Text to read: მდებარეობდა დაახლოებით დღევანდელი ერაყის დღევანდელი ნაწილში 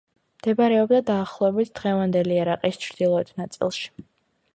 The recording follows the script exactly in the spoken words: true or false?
false